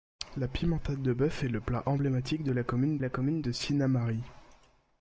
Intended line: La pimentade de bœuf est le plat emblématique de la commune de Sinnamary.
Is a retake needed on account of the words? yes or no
yes